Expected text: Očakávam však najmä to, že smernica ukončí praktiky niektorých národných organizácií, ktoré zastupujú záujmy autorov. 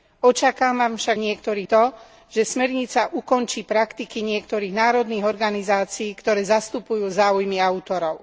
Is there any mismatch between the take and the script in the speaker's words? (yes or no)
yes